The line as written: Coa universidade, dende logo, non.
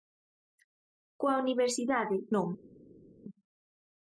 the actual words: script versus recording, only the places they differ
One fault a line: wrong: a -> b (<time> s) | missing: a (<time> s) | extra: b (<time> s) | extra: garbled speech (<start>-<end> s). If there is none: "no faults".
missing: dende logo (2.2 s)